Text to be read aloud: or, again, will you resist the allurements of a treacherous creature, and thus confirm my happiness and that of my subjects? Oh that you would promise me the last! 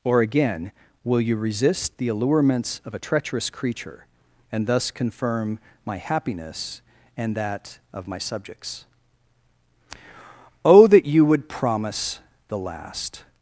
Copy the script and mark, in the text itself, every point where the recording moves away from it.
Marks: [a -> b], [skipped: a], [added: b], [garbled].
or, again, will you resist the allurements of a treacherous creature, and thus confirm my happiness and that of my subjects? Oh that you would promise [skipped: me] the last!